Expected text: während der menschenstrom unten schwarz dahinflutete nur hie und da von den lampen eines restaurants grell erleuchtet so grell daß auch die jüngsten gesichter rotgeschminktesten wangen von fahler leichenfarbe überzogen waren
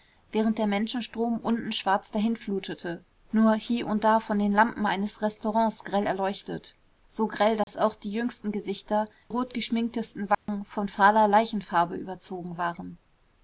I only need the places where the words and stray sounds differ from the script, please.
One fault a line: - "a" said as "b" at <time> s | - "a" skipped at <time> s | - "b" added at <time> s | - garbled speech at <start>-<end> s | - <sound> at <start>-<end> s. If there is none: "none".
- dropout at 7.6-7.7 s
- dropout at 10.3-10.5 s